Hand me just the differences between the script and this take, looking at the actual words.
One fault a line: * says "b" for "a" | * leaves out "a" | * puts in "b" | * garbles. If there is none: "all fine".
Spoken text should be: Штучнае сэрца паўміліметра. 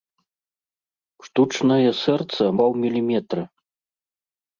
all fine